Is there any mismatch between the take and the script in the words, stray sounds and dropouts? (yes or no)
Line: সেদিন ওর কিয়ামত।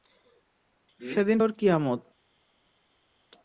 no